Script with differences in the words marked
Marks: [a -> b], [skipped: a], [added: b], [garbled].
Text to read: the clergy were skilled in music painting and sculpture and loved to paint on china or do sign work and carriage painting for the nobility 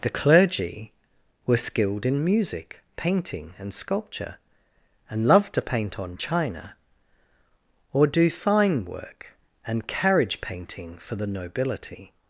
the clergy were skilled in music painting and sculpture and loved to paint on china or do sign work and carriage painting for the nobility